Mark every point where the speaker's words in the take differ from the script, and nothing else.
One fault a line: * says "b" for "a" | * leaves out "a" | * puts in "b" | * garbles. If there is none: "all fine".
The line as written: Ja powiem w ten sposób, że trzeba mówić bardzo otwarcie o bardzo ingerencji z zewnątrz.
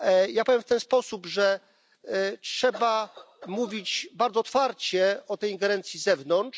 * says "tej" for "bardzo"